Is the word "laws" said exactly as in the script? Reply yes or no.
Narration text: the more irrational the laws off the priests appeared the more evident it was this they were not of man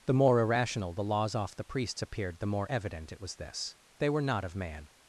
yes